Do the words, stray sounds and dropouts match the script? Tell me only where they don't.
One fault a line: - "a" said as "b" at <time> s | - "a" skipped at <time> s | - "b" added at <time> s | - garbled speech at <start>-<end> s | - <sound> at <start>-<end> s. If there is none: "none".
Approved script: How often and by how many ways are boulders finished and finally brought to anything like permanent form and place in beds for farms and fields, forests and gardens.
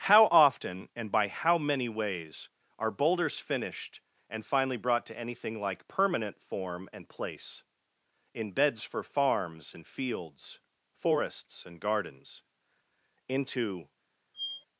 - "Into" added at 13.3 s
- squeak at 14.3-14.7 s